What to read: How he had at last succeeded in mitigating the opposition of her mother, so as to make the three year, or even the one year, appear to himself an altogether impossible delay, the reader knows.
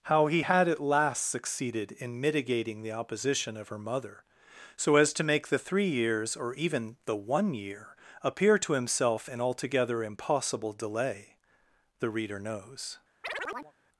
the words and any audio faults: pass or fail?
fail